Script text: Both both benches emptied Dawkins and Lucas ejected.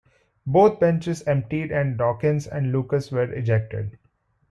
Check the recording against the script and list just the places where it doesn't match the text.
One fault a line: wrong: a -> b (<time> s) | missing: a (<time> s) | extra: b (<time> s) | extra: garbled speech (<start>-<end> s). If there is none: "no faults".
missing: both (0.8 s)
extra: and (1.7 s)
extra: were (3.1 s)